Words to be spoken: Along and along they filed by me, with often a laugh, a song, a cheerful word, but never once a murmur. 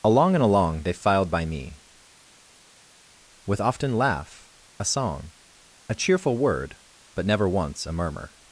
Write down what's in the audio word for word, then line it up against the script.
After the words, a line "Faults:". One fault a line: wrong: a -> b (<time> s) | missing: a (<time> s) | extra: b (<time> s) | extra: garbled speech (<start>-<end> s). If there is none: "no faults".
Along and along they filed by me, with often laugh, a song, a cheerful word, but never once a murmur.
Faults:
missing: a (4.0 s)